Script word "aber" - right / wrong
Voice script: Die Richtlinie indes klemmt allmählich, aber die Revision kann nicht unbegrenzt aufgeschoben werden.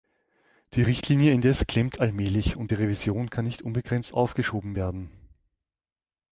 wrong